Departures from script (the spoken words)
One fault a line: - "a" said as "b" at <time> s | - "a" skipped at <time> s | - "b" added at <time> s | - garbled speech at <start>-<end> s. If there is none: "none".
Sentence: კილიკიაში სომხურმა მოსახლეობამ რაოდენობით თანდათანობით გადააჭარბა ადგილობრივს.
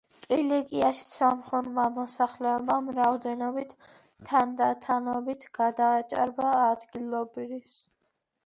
none